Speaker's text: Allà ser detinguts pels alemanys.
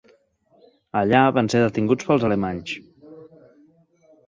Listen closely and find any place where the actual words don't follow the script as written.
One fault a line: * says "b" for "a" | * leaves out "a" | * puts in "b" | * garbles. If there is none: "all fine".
* puts in "van"